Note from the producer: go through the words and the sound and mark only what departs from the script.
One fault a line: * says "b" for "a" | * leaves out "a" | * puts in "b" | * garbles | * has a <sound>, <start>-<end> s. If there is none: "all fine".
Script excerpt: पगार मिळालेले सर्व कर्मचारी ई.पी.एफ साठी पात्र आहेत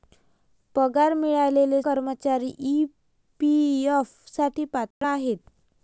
* leaves out "सर्व"
* has a dropout, 4.9-5.0 s